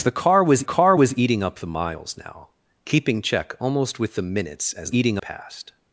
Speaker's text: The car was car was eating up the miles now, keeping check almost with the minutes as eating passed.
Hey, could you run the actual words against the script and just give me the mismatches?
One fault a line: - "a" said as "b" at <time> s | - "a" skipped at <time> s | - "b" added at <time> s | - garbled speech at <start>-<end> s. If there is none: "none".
none